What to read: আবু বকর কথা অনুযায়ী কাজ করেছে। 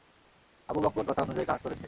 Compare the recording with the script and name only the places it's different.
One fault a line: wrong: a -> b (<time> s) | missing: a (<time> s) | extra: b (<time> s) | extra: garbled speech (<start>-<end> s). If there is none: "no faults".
no faults